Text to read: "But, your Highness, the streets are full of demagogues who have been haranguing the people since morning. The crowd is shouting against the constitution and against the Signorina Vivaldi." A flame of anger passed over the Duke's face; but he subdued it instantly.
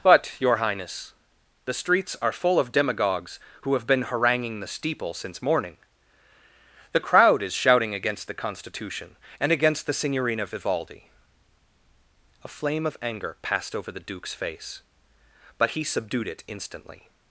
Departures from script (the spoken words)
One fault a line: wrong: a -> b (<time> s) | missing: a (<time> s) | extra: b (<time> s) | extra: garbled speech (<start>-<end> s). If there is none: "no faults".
wrong: people -> steeple (4.7 s)